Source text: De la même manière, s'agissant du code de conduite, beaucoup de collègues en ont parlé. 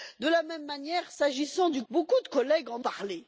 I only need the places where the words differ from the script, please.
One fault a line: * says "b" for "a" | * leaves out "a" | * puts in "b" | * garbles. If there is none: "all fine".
* leaves out "code de conduite"
* leaves out "ont"